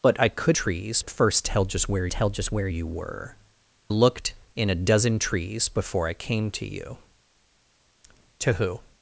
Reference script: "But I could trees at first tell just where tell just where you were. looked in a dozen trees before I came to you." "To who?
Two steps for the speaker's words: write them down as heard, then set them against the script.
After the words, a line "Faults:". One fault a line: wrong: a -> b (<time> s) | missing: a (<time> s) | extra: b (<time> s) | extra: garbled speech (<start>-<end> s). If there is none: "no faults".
"But I could trees at first tell just where tell just where you were. looked in a dozen trees before I came to you." "To who?
Faults:
no faults